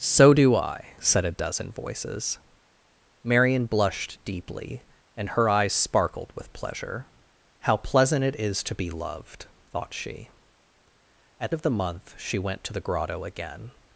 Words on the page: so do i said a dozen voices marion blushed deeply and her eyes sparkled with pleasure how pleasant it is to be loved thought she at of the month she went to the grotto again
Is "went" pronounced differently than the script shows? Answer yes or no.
no